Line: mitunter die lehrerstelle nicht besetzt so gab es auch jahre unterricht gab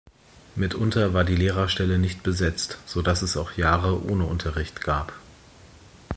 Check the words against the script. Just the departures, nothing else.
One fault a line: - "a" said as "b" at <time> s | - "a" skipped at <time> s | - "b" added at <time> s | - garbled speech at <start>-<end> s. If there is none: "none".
- "war" added at 1.1 s
- "gab" said as "dass" at 3.0 s
- "ohne" added at 4.1 s